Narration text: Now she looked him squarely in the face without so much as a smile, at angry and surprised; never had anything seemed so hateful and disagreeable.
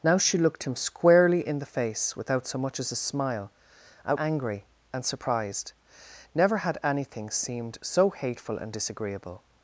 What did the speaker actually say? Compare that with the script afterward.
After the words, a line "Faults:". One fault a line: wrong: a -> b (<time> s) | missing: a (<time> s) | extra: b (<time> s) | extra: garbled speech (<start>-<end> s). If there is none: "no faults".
Now she looked him squarely in the face without so much as a smile, at angry and surprised; never had anything seemed so hateful and disagreeable.
Faults:
no faults